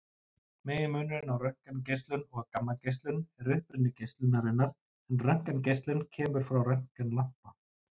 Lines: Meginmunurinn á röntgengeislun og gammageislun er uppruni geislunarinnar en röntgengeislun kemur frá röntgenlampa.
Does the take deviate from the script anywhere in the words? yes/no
no